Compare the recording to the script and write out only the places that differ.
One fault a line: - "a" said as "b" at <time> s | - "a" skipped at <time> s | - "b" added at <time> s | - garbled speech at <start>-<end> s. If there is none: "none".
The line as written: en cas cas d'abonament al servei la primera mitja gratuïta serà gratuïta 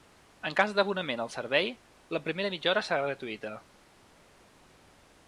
- "cas" skipped at 0.7 s
- "gratuïta" said as "hora" at 2.7 s